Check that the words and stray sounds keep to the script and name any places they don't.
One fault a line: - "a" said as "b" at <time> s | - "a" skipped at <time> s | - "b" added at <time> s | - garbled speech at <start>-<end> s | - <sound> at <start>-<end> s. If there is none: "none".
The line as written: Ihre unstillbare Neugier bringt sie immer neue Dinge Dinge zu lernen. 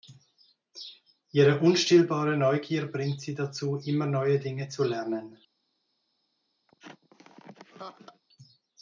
- "dazu" added at 3.4 s
- "Dinge" skipped at 4.7 s
- laugh at 6.7-8.2 s